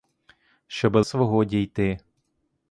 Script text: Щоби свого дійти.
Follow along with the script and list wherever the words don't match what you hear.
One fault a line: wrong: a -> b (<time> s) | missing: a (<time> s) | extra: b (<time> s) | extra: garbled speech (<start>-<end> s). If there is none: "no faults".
no faults